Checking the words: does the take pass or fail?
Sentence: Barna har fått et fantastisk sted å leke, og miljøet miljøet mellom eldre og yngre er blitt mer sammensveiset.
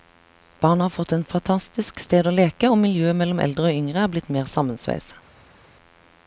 fail